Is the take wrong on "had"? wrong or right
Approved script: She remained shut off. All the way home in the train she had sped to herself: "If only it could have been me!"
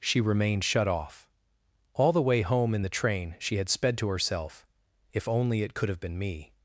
right